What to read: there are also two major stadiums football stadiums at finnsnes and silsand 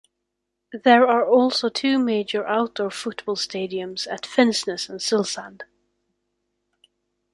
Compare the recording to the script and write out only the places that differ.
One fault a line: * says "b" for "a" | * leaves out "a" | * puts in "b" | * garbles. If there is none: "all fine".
* says "outdoor" for "stadiums"